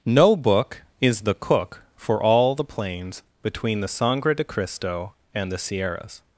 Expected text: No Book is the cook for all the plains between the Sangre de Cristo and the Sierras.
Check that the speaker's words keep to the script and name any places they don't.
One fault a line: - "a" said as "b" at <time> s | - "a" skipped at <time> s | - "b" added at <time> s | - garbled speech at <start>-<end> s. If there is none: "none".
none